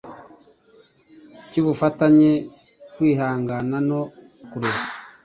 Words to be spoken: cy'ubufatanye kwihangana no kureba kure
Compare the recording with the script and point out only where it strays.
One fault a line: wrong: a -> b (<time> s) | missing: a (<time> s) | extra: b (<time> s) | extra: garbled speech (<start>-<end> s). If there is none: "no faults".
missing: kureba (4.0 s)